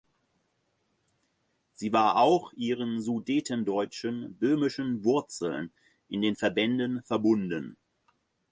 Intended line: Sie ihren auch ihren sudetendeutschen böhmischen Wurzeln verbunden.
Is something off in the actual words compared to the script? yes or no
yes